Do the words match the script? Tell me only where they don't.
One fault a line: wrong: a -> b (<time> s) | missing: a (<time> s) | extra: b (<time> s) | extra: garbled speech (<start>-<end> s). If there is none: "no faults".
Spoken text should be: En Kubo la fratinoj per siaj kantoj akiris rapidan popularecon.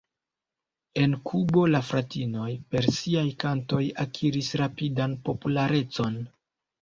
no faults